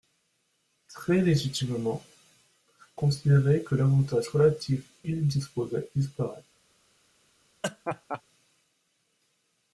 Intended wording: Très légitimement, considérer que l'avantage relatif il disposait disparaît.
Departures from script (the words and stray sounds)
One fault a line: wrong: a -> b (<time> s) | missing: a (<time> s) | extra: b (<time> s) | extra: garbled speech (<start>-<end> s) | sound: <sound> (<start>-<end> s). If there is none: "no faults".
sound: laugh (7.6-8.2 s)